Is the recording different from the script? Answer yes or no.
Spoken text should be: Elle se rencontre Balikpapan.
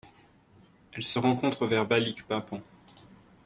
yes